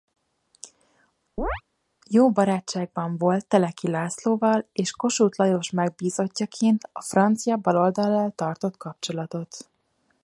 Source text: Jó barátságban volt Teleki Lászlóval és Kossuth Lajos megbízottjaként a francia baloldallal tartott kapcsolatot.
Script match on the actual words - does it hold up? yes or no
yes